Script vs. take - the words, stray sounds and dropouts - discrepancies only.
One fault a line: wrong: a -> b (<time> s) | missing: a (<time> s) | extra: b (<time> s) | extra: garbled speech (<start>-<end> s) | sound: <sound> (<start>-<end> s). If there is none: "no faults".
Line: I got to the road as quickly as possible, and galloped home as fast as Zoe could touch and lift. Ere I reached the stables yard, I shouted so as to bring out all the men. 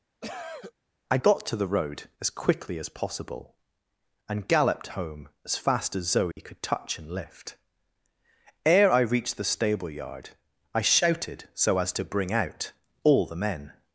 sound: cough (0.2-0.7 s)
sound: dropout (6.3-6.4 s)
wrong: stables -> stable (9.4 s)